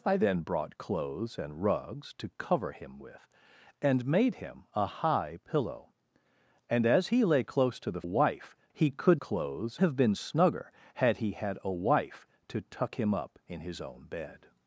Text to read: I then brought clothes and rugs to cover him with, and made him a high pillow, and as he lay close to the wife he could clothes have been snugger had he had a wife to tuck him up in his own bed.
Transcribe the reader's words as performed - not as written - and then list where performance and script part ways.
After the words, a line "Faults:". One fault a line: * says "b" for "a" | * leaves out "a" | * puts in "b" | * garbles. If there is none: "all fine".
I then brought clothes and rugs to cover him with, and made him a high pillow, and as he lay close to the wife he could clothes have been snugger had he had a wife to tuck him up in his own bed.
Faults:
all fine